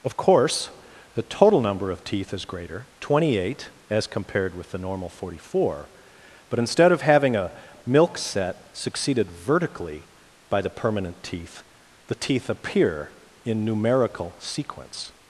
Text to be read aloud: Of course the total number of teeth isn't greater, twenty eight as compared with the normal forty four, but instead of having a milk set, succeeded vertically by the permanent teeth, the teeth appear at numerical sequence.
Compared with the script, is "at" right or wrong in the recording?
wrong